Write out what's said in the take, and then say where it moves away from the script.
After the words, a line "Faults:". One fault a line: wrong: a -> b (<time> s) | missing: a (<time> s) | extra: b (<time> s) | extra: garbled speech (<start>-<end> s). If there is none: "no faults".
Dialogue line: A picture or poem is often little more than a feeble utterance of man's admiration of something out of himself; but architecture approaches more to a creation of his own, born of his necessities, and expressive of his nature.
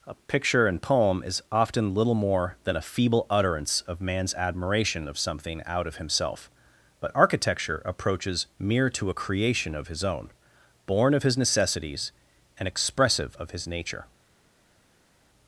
A picture and poem is often little more than a feeble utterance of man's admiration of something out of himself; but architecture approaches mere to a creation of his own, born of his necessities, and expressive of his nature.
Faults:
wrong: or -> and (0.7 s)
wrong: more -> mere (8.6 s)